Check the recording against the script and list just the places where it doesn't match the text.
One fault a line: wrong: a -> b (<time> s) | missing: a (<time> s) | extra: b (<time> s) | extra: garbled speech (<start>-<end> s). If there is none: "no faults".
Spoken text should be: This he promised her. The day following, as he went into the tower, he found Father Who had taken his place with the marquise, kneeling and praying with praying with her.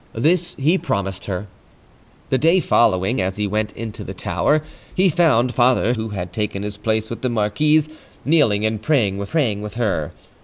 no faults